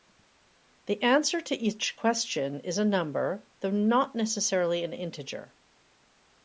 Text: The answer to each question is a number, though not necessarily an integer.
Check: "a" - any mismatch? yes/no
no